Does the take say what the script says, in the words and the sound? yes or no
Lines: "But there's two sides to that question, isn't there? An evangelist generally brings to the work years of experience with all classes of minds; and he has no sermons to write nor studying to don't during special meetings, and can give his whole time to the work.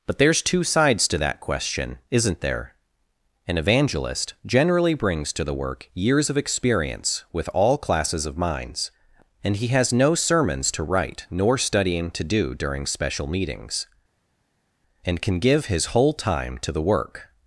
no